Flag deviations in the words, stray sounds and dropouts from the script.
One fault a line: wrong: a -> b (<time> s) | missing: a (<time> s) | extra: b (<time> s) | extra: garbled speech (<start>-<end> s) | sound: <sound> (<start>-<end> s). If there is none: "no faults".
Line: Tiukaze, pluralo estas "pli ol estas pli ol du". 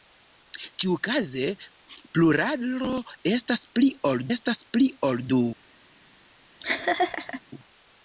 sound: laugh (6.6-7.4 s)